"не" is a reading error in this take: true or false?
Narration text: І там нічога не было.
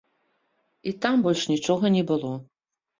false